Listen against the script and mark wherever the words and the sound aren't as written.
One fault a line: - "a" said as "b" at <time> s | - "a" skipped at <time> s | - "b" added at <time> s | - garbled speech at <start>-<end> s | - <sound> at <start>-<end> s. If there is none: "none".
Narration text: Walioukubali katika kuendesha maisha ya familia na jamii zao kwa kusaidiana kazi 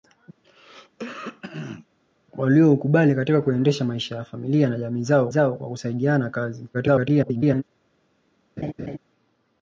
- throat clearing at 0.4-1.9 s
- "zao" added at 5.3 s
- garbled speech at 6.7-7.6 s
- laugh at 8.6-9.0 s